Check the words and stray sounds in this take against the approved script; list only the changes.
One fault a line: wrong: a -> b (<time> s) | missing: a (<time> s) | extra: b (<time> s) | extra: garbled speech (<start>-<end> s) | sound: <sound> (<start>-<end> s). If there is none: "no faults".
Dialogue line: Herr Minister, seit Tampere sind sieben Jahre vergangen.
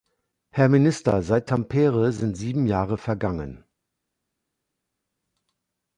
no faults